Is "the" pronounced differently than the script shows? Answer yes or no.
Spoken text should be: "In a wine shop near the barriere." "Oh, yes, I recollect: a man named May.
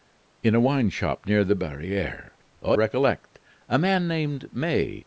no